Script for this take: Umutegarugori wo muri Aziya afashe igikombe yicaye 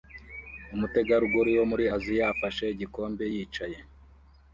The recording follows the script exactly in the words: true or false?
true